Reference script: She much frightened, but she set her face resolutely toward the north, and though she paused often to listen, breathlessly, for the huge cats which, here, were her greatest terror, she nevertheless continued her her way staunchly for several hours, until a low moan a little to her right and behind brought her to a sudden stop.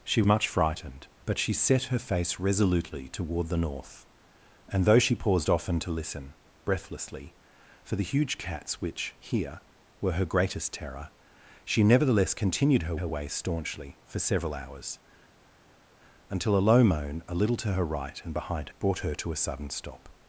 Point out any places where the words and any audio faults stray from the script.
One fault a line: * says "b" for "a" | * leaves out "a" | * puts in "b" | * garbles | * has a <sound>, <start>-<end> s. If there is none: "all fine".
all fine